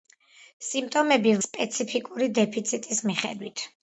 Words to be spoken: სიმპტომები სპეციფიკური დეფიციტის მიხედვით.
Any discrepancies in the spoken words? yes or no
no